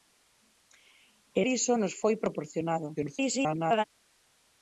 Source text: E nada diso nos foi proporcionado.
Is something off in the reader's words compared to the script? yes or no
yes